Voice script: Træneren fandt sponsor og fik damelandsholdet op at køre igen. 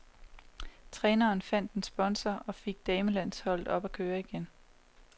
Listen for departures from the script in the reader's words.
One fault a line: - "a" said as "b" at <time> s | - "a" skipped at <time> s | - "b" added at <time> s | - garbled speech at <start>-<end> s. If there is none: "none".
- "en" added at 1.7 s